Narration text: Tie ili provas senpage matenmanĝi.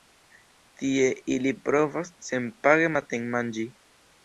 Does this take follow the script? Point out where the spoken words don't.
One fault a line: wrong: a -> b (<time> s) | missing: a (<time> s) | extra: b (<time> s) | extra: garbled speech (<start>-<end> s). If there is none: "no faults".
no faults